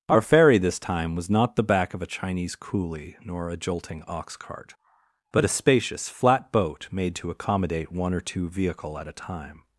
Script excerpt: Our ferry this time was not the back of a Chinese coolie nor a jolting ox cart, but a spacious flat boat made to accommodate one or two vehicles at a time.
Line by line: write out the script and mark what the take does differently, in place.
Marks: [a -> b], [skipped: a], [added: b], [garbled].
Our ferry this time was not the back of a Chinese coolie nor a jolting ox cart, but a spacious flat boat made to accommodate one or two [vehicles -> vehicle] at a time.